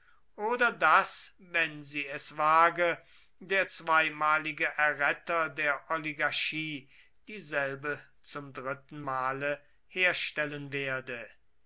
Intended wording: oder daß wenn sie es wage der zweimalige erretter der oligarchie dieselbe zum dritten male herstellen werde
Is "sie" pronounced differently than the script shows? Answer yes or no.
no